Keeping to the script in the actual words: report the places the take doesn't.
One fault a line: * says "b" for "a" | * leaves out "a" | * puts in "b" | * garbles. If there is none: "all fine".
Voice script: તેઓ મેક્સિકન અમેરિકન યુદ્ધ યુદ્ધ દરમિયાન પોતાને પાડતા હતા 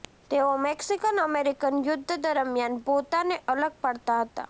* leaves out "યુદ્ધ"
* puts in "અલગ"